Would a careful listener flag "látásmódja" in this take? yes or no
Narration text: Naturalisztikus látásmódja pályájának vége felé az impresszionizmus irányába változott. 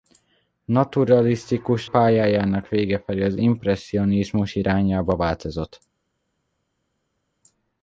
yes